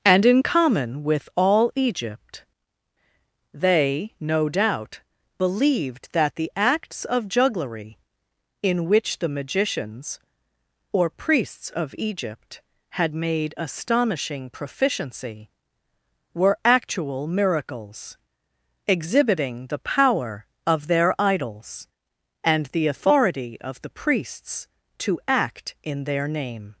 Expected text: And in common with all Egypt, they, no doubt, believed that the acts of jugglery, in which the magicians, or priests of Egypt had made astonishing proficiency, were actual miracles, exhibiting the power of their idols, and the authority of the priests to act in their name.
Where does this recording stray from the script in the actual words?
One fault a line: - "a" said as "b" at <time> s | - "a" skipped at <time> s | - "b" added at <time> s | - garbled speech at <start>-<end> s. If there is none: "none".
none